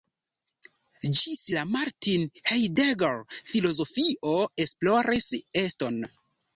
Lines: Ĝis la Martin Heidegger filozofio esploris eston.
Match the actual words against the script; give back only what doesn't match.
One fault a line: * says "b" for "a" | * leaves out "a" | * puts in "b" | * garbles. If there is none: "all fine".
all fine